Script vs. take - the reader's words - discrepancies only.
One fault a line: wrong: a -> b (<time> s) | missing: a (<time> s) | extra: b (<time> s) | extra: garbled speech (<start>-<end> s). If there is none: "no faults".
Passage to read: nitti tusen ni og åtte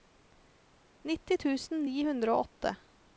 extra: hundre (2.1 s)